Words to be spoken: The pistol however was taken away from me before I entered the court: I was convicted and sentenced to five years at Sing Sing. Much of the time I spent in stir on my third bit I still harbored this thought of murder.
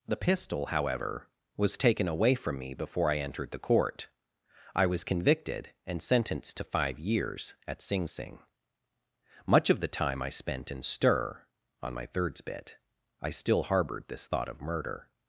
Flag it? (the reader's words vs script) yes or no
yes